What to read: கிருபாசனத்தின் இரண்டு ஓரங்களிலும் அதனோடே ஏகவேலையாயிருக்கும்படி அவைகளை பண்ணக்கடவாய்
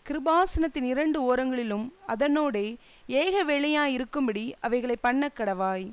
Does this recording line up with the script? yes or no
yes